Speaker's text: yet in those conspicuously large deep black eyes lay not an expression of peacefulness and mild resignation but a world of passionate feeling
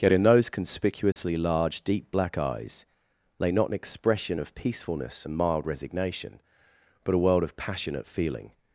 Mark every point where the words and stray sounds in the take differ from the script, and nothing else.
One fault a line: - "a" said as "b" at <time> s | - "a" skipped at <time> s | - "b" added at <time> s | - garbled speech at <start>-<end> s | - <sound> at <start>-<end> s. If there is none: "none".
- dropout at 1.1-1.2 s